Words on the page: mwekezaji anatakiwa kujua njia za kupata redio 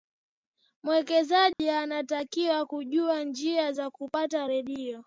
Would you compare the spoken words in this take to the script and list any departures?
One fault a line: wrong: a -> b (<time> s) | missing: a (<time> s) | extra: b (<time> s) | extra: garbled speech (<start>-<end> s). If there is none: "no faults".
no faults